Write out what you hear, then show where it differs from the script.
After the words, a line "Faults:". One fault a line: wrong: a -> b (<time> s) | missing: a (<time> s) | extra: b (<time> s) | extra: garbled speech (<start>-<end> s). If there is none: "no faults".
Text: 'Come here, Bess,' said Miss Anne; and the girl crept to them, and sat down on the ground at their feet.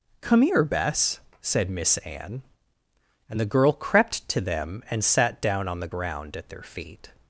'Come here, Bess,' said Miss Anne; and the girl crept to them, and sat down on the ground at their feet.
Faults:
no faults